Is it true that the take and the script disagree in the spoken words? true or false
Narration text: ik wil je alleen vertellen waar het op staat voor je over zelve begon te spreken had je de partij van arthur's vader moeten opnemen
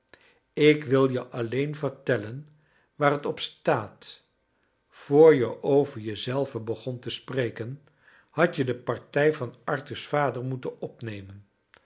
true